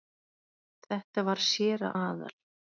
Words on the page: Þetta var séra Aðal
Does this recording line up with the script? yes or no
yes